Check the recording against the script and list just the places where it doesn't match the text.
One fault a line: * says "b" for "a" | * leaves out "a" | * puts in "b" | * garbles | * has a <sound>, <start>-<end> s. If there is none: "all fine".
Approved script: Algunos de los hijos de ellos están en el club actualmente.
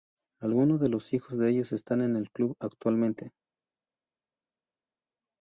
all fine